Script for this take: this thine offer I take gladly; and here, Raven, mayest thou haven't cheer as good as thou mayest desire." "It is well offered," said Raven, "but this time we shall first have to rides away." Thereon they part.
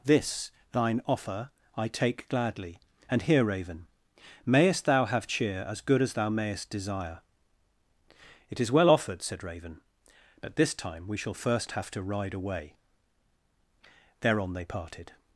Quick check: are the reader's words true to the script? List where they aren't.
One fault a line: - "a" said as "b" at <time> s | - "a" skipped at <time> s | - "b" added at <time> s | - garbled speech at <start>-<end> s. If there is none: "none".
- "haven't" said as "have" at 5.0 s
- "rides" said as "ride" at 12.0 s
- "part" said as "parted" at 14.6 s